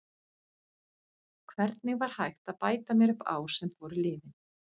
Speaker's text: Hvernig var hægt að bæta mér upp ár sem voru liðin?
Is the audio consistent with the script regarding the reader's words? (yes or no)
yes